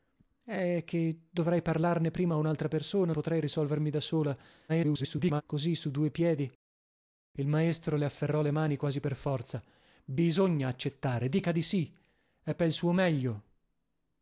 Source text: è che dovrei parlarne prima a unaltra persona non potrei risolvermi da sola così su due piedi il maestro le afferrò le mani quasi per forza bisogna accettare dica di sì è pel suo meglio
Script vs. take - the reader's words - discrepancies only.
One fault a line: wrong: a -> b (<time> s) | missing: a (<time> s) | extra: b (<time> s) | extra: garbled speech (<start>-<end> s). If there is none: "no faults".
missing: non (3.1 s)
extra: garbled speech (4.7-5.4 s)